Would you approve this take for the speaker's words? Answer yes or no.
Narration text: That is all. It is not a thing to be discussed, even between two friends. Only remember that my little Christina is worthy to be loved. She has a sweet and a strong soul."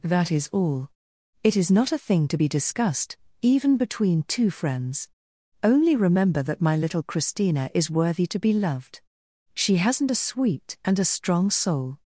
no